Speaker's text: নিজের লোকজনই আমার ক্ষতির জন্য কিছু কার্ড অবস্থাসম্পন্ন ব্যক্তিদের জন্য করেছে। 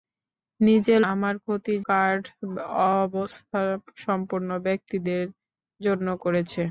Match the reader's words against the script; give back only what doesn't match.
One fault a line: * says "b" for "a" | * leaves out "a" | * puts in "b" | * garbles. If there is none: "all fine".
* leaves out "লোকজনই"
* leaves out "জন্য কিছু"